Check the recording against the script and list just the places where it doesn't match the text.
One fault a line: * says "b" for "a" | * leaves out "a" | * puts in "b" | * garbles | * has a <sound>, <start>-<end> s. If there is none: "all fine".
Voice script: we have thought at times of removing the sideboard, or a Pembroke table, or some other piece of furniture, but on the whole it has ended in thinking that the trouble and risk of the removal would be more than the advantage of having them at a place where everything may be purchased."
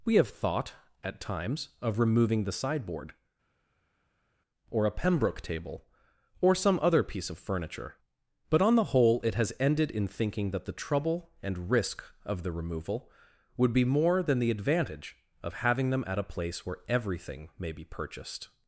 all fine